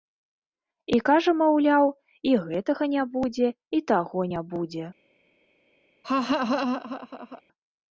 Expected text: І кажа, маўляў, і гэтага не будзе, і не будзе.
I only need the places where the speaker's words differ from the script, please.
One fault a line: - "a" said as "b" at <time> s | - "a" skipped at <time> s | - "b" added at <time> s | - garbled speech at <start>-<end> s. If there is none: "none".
- "таго" added at 3.9 s